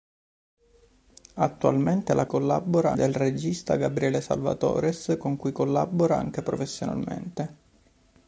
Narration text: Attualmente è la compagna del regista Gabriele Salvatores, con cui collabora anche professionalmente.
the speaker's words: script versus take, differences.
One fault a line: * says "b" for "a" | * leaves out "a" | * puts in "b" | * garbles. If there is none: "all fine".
* says "collabora" for "compagna"